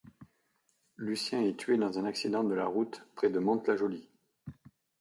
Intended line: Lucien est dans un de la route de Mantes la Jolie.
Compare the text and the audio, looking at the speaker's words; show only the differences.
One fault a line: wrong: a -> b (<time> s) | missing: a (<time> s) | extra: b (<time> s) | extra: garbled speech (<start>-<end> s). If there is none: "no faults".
extra: tué (1.6 s)
extra: accident (2.0 s)
extra: près (3.1 s)